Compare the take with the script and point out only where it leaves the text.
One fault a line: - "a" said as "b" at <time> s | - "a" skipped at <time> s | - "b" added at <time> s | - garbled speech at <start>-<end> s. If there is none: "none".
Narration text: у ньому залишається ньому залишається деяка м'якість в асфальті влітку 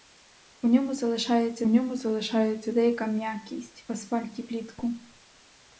none